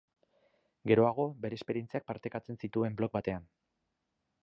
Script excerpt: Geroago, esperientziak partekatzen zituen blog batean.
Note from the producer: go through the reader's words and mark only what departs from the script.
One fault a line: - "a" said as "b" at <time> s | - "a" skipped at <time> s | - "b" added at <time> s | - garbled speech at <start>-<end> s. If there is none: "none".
- "bere" added at 1.4 s